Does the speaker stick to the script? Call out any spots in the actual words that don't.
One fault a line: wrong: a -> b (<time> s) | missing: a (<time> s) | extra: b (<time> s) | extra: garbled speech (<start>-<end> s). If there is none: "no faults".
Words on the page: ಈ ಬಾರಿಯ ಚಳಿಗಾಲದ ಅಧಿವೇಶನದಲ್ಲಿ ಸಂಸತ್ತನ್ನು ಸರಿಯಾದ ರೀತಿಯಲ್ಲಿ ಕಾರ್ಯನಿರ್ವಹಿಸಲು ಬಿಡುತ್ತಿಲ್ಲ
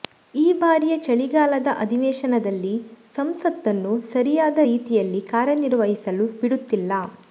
no faults